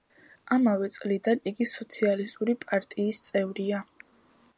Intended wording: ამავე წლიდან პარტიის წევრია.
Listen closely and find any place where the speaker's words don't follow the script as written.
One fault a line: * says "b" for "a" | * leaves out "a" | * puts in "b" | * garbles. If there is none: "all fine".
* puts in "იგი სოციალისტური"